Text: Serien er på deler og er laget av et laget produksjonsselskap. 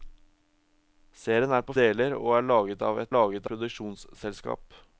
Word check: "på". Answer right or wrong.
right